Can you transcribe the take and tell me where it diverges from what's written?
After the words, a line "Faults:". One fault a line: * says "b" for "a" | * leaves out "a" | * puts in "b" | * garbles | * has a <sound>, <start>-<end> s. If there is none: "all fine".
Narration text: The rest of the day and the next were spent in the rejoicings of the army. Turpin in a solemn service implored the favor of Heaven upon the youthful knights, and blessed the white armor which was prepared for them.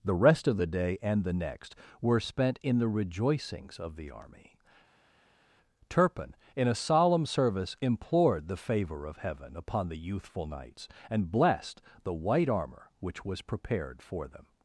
The rest of the day and the next were spent in the rejoicings of the army. Turpin in a solemn service implored the favor of Heaven upon the youthful knights, and blessed the white armor which was prepared for them.
Faults:
all fine